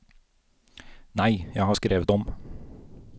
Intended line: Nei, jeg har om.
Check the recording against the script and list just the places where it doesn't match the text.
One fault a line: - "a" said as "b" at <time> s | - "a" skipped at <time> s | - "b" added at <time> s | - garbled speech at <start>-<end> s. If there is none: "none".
- "skrevet" added at 1.7 s